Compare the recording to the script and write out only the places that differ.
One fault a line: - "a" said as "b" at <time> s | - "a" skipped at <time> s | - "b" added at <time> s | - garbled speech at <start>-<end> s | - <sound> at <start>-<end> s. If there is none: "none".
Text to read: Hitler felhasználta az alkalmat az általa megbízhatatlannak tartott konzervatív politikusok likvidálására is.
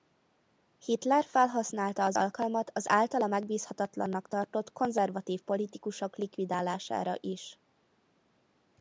none